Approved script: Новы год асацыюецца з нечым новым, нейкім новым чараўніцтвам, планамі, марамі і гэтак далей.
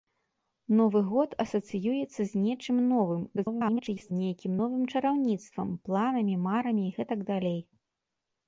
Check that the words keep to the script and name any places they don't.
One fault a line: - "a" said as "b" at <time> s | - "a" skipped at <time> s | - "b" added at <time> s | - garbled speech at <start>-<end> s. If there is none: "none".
- garbled speech at 3.4-4.1 s